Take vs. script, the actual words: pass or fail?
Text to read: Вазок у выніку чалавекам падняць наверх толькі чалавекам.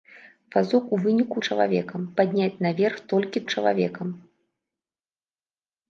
pass